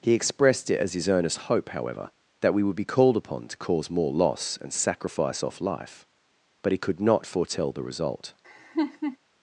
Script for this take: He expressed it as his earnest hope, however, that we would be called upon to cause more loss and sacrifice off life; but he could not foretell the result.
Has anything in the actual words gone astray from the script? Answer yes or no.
no